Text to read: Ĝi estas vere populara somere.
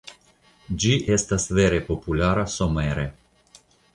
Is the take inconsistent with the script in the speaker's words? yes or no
no